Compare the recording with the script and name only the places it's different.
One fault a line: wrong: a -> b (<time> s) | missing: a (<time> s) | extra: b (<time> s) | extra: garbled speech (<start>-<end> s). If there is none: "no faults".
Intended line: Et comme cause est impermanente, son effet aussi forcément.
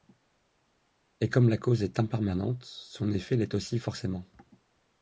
extra: la (1.5 s)
extra: l'est (3.4 s)